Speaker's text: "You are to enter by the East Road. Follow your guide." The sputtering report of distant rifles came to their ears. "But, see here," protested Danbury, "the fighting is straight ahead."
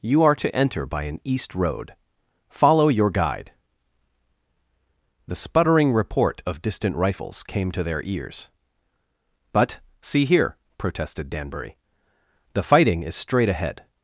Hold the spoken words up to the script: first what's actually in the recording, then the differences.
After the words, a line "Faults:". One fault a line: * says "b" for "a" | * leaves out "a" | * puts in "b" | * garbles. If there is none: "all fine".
"You are to enter by an East Road. Follow your guide." The sputtering report of distant rifles came to their ears. "But, see here," protested Danbury, "the fighting is straight ahead."
Faults:
* says "an" for "the"